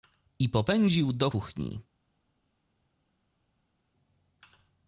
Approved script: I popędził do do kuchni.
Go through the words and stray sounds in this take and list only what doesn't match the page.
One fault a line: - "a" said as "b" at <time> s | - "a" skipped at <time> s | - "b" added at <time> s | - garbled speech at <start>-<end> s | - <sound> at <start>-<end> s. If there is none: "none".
- "do" skipped at 1.3 s